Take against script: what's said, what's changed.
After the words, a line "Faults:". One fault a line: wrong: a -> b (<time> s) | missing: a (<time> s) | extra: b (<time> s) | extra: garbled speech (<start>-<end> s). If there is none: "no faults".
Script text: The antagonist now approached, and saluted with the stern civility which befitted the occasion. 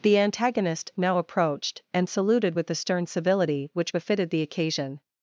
The antagonist now approached, and saluted with the stern civility which befitted the occasion.
Faults:
no faults